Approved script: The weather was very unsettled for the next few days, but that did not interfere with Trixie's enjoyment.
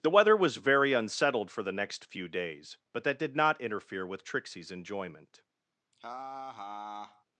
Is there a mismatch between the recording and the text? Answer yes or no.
no